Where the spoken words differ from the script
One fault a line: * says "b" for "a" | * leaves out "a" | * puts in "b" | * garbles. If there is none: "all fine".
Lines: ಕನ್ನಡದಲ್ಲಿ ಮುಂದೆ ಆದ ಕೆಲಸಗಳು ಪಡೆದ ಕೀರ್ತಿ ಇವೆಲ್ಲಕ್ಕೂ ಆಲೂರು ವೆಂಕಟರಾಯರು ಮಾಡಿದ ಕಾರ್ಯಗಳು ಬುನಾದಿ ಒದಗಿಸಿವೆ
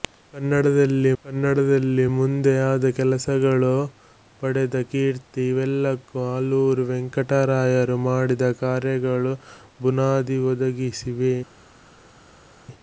* puts in "ಕನ್ನಡದಲ್ಲಿ"